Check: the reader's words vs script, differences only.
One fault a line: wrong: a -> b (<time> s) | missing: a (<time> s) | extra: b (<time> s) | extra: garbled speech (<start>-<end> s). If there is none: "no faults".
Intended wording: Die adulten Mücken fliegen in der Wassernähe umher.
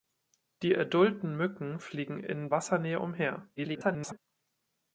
missing: der (2.5 s)
extra: garbled speech (3.6-4.2 s)